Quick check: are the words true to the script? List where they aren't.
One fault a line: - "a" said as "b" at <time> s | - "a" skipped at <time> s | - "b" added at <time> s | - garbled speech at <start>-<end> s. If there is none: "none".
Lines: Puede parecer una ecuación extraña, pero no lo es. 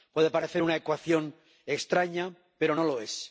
none